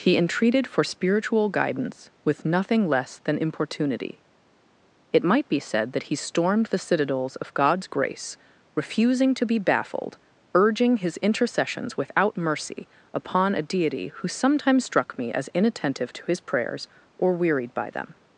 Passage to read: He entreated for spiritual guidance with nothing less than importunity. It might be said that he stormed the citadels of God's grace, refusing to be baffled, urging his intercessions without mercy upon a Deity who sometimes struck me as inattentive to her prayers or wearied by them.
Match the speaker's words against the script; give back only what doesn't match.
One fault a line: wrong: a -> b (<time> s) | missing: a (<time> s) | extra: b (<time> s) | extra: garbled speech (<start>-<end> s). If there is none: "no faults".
wrong: her -> his (16.3 s)